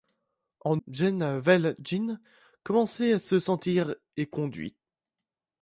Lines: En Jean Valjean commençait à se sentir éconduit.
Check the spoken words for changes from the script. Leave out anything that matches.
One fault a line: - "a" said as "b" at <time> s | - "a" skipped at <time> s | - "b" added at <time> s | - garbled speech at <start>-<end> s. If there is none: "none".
none